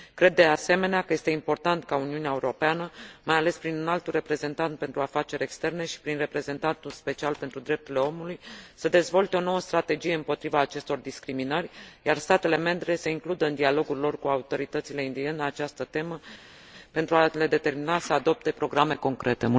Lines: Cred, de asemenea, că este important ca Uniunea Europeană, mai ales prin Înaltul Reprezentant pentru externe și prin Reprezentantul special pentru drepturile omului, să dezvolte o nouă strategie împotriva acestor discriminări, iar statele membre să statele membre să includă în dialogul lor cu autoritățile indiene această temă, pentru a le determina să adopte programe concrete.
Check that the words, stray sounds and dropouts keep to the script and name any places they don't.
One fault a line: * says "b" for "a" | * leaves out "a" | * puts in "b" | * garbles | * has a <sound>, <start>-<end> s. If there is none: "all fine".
* puts in "afaceri"
* leaves out "statele membre să"